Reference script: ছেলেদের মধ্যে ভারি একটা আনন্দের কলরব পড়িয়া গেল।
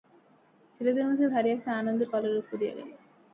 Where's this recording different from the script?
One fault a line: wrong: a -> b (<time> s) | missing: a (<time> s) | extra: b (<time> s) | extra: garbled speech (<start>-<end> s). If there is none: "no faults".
no faults